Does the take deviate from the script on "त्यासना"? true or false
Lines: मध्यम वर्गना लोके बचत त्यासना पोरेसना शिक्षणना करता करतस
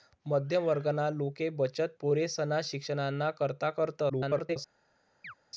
true